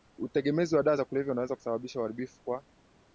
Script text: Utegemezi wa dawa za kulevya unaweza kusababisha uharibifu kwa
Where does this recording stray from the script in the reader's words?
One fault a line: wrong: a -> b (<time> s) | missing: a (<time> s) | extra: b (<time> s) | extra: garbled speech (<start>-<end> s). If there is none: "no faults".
no faults